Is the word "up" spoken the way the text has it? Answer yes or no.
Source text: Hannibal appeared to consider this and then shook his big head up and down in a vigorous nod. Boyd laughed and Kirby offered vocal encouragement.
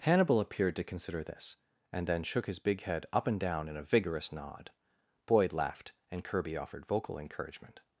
yes